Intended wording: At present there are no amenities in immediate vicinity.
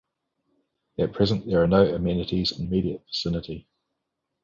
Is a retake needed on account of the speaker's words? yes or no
no